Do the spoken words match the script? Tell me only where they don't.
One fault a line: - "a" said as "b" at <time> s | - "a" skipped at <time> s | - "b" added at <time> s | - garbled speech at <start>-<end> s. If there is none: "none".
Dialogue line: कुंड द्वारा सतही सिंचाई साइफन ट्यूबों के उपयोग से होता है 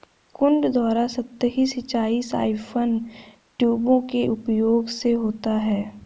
none